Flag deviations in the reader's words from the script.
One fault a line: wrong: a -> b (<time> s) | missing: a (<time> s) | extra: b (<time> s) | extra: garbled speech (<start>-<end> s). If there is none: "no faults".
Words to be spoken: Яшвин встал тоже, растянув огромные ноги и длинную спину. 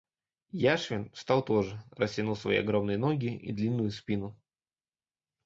extra: свои (2.4 s)